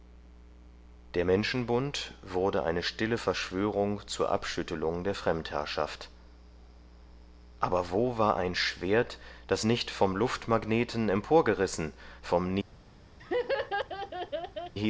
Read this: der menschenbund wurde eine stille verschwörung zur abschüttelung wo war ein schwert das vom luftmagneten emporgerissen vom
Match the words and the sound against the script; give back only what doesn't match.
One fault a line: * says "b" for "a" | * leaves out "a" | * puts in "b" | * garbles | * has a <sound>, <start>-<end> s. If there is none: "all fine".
* puts in "der fremdherrschaft aber"
* puts in "nicht"
* has a laugh, 13.2-14.7 s